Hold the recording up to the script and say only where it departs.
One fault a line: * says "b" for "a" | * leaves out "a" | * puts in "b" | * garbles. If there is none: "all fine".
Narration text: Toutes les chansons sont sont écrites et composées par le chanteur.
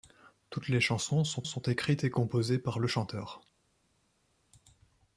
all fine